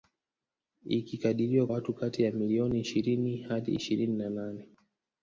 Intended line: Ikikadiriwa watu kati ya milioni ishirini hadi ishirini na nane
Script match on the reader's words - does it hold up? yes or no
yes